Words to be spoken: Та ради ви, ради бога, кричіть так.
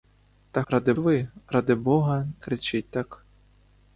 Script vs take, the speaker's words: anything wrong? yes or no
no